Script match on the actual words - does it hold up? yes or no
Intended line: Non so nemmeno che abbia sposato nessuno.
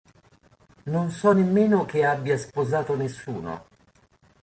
yes